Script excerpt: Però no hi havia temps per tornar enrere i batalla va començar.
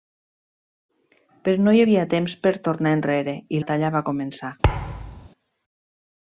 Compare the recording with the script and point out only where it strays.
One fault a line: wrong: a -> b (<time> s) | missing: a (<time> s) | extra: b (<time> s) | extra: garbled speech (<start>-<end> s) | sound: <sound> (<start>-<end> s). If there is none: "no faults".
sound: thud (4.6-5.3 s)